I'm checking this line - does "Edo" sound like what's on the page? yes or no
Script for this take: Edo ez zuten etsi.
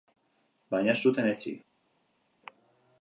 no